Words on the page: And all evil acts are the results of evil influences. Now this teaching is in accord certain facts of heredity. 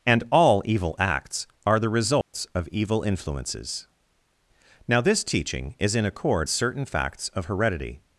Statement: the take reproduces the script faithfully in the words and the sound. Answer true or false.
false